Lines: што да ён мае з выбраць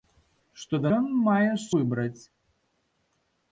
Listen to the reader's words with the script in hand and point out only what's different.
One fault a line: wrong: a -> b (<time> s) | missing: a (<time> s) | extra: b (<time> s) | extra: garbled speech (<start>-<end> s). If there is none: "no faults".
no faults